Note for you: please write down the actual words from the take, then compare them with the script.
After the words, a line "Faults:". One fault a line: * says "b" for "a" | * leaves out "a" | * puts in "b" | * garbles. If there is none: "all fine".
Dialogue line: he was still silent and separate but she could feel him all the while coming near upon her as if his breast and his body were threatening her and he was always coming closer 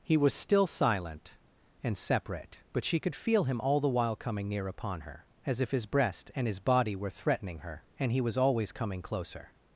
he was still silent and separate but she could feel him all the while coming near upon her as if his breast and his body were threatening her and he was always coming closer
Faults:
all fine